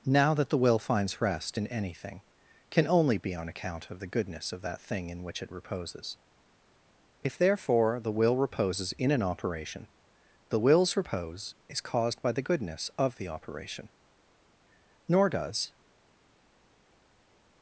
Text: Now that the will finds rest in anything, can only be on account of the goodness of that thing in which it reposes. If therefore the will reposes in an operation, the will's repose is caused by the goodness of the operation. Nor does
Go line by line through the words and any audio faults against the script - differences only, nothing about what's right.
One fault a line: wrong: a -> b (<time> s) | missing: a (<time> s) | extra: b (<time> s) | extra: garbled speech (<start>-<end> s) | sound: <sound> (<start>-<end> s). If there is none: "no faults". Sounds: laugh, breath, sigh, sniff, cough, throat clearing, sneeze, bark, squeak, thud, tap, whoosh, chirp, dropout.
no faults